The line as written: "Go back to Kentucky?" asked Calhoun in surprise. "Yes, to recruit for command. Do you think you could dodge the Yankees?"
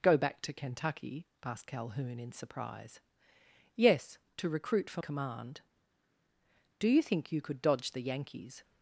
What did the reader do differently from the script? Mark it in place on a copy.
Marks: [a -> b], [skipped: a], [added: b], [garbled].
"Go back to Kentucky?" asked Calhoun in surprise. "Yes, to recruit for command. Do you think you could dodge the Yankees?"